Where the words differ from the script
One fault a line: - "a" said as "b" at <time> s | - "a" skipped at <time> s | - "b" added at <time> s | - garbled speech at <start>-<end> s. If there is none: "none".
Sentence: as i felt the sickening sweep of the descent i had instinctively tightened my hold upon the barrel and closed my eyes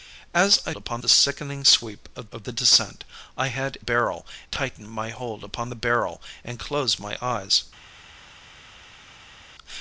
- "felt" said as "upon" at 0.8 s
- "of" added at 2.3 s
- "instinctively" said as "barrel" at 3.8 s